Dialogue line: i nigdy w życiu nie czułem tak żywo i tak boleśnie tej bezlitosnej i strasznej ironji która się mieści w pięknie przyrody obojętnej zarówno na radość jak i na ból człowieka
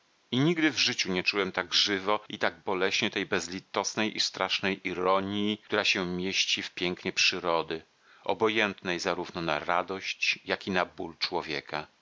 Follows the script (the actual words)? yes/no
yes